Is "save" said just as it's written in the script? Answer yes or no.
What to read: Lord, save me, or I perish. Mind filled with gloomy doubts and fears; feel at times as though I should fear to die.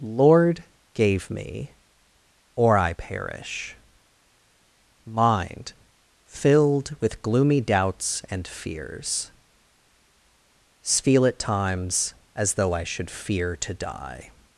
no